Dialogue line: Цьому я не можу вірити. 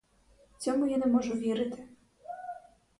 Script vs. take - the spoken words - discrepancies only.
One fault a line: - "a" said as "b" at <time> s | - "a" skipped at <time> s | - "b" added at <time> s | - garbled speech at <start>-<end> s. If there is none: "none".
none